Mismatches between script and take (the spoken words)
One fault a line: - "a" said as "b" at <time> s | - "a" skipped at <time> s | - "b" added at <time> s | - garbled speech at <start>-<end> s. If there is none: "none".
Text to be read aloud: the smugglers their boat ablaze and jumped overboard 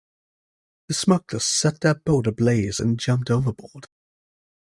- "set" added at 1.4 s